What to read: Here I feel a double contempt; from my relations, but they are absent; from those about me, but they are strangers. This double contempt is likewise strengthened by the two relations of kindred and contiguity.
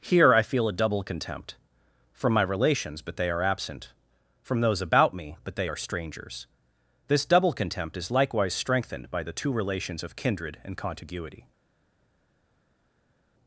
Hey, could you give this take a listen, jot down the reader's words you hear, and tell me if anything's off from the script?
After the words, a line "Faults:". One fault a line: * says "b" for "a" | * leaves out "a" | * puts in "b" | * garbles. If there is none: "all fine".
Here I feel a double contempt; from my relations, but they are absent; from those about me, but they are strangers. This double contempt is likewise strengthened by the two relations of kindred and contiguity.
Faults:
all fine